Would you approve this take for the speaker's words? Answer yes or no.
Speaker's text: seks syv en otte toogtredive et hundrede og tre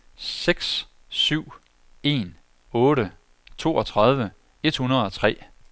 yes